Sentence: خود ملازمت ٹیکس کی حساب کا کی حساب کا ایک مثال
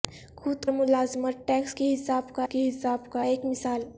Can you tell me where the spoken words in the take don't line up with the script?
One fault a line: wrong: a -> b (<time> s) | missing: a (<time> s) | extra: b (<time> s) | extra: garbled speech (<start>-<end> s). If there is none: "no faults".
no faults